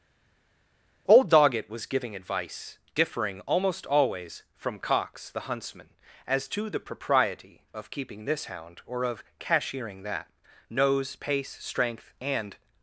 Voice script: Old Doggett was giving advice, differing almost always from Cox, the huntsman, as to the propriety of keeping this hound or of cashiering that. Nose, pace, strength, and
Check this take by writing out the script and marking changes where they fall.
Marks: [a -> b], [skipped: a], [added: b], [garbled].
Old Doggett was giving advice, differing almost always from Cox, the huntsman, as to the propriety of keeping this hound or of cashiering that. Nose, pace, strength, and